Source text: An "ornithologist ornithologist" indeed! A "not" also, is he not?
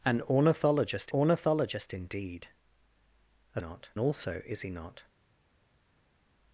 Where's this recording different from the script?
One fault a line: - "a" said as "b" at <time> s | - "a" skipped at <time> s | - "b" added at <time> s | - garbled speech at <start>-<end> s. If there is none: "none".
none